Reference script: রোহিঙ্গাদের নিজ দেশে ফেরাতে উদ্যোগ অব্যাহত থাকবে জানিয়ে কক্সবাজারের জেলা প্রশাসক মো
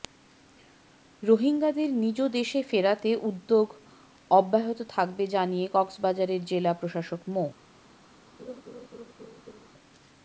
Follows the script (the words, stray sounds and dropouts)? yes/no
no